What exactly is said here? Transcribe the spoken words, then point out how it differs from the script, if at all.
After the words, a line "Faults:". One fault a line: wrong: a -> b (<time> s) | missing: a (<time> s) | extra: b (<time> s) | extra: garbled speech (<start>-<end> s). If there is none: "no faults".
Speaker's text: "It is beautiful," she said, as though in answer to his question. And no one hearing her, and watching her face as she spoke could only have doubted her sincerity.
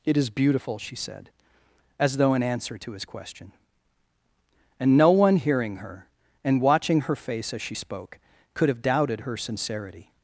"It is beautiful," she said, as though in answer to his question. And no one hearing her, and watching her face as she spoke could have doubted her sincerity.
Faults:
missing: only (8.7 s)